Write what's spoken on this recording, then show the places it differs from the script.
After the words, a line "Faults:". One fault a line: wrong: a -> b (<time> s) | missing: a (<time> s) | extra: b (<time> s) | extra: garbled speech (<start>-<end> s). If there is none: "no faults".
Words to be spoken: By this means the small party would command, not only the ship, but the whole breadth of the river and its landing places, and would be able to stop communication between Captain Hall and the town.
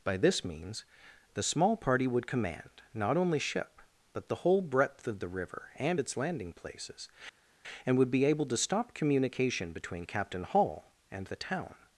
By this means the small party would command, not only ship, but the whole breadth of the river and its landing places, and would be able to stop communication between Captain Hall and the town.
Faults:
missing: the (3.4 s)